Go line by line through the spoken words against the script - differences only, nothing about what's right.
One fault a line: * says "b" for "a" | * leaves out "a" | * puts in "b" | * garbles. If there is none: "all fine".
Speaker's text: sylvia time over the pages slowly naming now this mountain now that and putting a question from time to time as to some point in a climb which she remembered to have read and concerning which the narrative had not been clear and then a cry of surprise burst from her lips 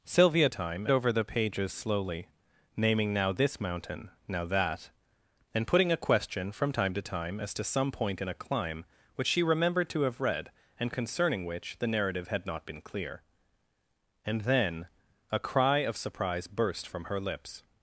all fine